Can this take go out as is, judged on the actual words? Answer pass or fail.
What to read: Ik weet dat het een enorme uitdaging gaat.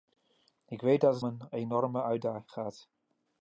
pass